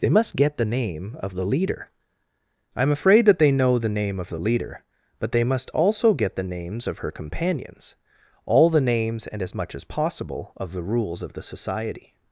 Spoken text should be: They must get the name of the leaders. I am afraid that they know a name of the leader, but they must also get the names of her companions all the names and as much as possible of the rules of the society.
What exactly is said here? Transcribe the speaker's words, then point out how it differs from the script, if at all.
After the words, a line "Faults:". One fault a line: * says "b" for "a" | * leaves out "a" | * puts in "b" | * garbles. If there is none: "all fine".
They must get the name of the leader. I am afraid that they know the name of the leader, but they must also get the names of her companions all the names and as much as possible of the rules of the society.
Faults:
* says "leader" for "leaders"
* says "the" for "a"